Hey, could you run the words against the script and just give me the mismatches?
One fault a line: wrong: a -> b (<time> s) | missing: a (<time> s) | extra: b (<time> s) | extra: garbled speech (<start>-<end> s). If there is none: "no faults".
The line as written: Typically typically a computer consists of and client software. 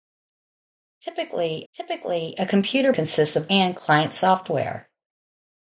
no faults